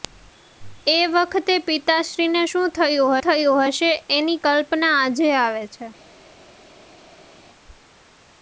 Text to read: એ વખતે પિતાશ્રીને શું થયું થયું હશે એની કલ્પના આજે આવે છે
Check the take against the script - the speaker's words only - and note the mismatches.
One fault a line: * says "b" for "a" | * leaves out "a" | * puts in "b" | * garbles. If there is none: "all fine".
all fine